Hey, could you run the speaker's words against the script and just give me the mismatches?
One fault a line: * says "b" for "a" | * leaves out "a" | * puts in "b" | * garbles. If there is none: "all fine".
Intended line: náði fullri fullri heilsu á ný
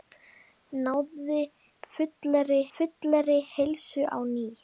all fine